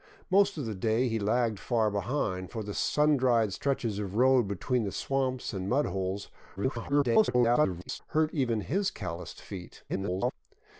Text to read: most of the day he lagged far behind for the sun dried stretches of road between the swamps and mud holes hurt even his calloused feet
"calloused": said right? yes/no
yes